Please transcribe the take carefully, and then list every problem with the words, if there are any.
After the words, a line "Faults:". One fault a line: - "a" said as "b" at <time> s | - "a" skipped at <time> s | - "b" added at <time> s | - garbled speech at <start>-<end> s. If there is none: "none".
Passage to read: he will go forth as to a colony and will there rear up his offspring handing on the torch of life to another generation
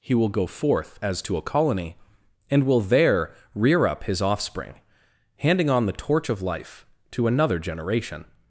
he will go forth as to a colony and will there rear up his offspring handing on the torch of life to another generation
Faults:
none